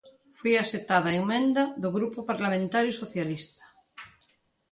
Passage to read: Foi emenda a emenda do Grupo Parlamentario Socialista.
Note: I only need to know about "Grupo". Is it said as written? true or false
true